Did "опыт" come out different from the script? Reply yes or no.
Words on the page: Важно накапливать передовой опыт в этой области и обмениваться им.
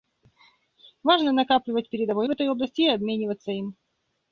yes